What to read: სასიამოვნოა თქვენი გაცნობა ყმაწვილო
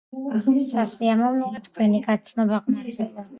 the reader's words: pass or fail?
pass